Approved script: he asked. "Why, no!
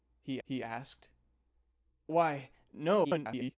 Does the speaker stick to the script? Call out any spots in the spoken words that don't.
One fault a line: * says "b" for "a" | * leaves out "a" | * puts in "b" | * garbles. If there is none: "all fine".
* puts in "he"
* garbles